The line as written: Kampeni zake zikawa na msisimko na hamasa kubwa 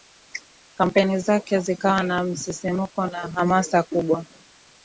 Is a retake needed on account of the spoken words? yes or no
no